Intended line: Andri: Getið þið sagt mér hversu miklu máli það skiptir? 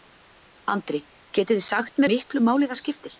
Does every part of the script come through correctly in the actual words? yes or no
no